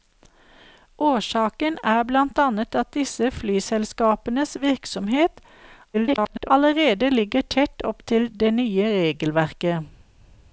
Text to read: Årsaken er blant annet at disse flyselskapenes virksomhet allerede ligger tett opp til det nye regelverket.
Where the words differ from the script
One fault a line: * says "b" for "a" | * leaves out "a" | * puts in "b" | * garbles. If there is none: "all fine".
* garbles